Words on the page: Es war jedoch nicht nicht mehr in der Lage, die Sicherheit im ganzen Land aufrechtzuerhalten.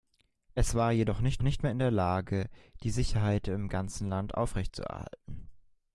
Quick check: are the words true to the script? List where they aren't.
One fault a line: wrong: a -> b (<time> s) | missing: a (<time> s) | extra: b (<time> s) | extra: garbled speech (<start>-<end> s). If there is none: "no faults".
no faults